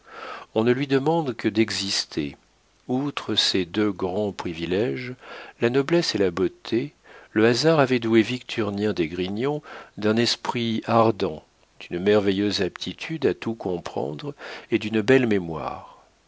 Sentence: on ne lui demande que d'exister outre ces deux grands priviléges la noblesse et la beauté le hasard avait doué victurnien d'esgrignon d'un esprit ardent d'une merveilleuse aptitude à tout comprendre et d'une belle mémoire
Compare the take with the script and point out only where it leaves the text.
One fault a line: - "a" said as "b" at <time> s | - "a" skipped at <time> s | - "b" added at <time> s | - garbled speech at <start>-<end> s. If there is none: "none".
none